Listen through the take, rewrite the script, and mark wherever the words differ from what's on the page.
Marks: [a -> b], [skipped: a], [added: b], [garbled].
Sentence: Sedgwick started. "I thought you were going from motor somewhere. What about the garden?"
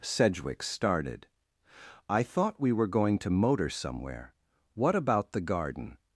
Sedgwick started. "I thought [you -> we] were going [from -> to] motor somewhere. What about the garden?"